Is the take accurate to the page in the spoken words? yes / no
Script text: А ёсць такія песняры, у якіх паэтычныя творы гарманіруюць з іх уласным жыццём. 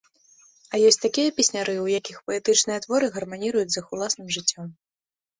yes